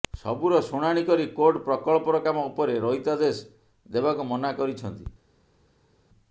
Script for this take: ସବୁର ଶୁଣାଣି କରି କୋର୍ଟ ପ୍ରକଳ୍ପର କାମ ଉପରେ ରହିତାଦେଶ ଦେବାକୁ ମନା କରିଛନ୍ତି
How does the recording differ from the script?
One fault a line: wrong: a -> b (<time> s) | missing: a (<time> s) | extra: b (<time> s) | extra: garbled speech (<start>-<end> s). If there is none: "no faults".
no faults